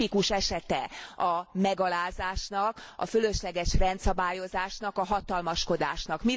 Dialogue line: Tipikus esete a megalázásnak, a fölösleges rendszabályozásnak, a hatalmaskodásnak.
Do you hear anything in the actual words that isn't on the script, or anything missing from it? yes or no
no